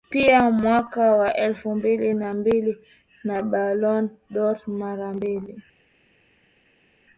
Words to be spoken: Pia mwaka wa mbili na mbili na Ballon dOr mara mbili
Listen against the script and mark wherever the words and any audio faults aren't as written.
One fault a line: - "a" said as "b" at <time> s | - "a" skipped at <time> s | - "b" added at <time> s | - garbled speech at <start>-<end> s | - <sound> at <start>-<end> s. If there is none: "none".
- "elfu" added at 1.4 s